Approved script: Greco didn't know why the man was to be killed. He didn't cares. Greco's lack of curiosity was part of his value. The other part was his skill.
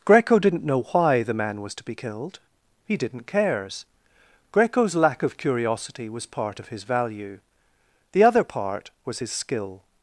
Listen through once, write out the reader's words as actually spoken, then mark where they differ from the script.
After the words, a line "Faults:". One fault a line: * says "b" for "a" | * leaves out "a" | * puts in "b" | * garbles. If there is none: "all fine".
Greco didn't know why the man was to be killed. He didn't cares. Greco's lack of curiosity was part of his value. The other part was his skill.
Faults:
all fine